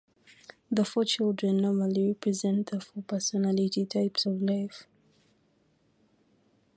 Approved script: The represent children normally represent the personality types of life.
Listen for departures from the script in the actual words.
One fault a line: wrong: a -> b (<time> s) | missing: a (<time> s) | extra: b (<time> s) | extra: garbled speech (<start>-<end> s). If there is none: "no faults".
wrong: represent -> four (0.8 s)
extra: four (2.8 s)